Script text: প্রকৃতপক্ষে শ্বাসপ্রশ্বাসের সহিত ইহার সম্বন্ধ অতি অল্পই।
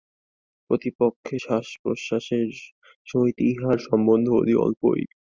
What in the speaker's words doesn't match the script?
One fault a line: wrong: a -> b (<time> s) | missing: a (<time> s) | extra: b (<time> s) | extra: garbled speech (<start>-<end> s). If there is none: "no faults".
no faults